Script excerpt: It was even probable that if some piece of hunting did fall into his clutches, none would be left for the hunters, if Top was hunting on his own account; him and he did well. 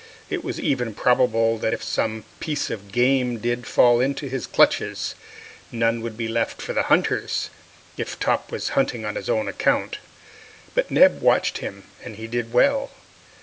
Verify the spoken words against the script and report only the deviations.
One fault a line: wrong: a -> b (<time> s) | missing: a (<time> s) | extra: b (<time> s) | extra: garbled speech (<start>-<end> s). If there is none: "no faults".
wrong: hunting -> game (2.9 s)
extra: but Neb watched (10.7 s)